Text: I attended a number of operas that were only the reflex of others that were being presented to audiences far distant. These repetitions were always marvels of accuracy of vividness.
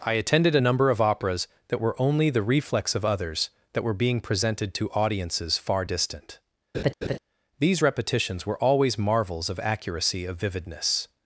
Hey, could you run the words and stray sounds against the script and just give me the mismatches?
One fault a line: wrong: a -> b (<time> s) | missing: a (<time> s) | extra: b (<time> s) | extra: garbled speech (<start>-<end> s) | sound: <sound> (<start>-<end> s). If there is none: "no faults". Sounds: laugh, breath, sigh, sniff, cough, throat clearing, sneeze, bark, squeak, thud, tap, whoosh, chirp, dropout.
sound: laugh (6.7-7.2 s)